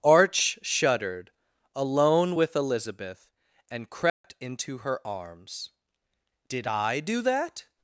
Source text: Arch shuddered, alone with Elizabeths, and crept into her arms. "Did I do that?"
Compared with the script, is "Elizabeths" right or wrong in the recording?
wrong